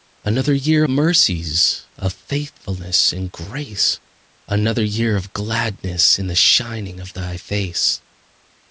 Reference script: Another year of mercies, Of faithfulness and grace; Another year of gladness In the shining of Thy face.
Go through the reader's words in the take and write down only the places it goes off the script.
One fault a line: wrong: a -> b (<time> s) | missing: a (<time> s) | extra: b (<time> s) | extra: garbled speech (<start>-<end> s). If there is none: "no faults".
missing: of (0.8 s)